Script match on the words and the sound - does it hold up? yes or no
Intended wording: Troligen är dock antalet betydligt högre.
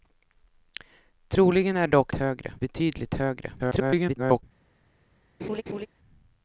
no